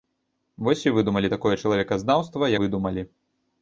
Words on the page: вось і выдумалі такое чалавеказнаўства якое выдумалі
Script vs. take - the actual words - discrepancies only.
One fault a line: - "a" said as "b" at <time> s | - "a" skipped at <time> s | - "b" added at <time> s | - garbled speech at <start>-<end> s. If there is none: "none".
- "якое" skipped at 2.5 s